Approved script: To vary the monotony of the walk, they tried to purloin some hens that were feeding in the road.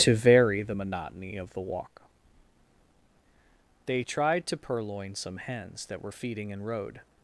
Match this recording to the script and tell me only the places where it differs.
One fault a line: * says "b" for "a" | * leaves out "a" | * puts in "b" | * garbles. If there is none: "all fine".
* leaves out "the"